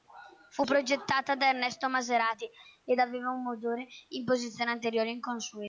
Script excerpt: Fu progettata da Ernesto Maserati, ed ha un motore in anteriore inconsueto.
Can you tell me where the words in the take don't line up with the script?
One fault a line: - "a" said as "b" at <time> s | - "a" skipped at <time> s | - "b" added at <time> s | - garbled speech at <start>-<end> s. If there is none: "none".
- "ha" said as "aveva" at 3.0 s
- "posizione" added at 4.2 s